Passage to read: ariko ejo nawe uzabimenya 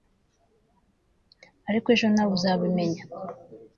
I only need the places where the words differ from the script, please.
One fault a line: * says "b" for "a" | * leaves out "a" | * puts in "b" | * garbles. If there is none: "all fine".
all fine